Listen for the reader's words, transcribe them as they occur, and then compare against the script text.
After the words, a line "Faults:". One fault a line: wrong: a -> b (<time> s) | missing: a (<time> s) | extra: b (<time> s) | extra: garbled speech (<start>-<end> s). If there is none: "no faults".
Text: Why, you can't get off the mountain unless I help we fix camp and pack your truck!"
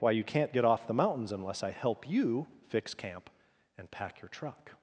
Why, you can't get off the mountains unless I help you fix camp and pack your truck!"
Faults:
wrong: mountain -> mountains (0.9 s)
wrong: we -> you (2.1 s)